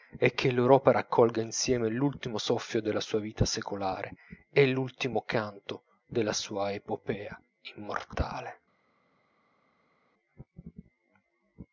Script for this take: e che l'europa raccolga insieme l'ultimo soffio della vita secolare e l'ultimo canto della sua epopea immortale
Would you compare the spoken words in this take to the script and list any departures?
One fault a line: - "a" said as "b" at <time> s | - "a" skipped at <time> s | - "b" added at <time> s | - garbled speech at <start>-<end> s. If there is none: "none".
- "sua" added at 3.0 s